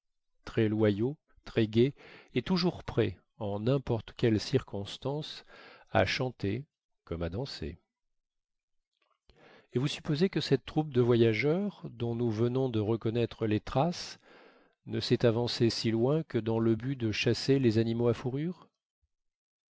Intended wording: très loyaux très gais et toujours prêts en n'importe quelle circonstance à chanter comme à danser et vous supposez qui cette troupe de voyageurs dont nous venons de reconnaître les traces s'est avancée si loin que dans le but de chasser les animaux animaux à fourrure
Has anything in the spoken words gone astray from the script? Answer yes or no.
yes